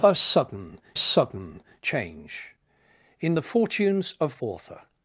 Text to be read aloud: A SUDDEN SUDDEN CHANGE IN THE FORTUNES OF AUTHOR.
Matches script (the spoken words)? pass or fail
pass